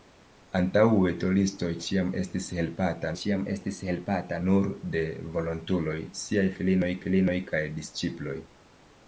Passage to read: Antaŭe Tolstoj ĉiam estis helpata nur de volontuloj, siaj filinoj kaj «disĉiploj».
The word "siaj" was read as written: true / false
true